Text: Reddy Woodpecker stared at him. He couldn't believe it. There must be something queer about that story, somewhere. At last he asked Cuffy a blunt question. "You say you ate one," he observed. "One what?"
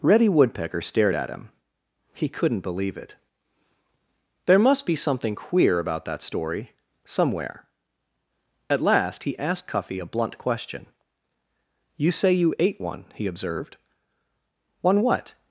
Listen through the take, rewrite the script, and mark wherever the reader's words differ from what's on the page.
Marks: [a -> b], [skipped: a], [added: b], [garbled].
Reddy Woodpecker stared at him. He couldn't believe it. There must be something queer about that story, somewhere. At last he asked Cuffy a blunt question. "You say you ate one," he observed. "One what?"